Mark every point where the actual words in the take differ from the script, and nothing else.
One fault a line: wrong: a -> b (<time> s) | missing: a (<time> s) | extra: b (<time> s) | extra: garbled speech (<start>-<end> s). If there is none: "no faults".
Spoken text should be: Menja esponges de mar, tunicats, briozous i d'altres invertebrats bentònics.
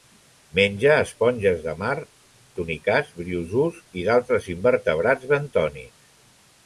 no faults